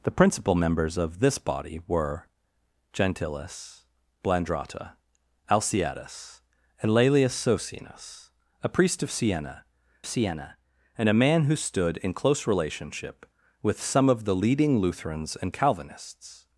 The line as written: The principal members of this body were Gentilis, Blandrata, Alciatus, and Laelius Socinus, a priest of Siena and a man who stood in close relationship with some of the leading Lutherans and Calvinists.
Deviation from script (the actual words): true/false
true